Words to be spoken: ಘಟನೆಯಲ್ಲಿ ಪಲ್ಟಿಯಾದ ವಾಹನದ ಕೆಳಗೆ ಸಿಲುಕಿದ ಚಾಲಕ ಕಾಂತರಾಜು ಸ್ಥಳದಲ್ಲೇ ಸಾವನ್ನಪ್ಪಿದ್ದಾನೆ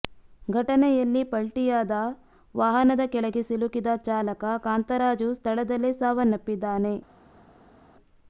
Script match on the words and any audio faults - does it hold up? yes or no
yes